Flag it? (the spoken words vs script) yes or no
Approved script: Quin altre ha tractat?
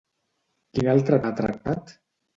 no